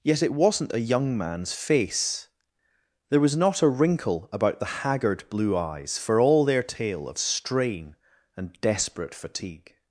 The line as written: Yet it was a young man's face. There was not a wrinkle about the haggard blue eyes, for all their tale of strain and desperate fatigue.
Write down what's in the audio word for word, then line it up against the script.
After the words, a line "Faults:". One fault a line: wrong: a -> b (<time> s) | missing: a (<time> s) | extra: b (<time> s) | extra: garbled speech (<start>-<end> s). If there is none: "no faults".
Yet it wasn't a young man's face. There was not a wrinkle about the haggard blue eyes, for all their tale of strain and desperate fatigue.
Faults:
wrong: was -> wasn't (0.3 s)